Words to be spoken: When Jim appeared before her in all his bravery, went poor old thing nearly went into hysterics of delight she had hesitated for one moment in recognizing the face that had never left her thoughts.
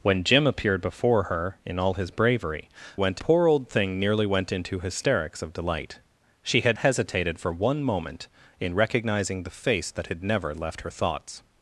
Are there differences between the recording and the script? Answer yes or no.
no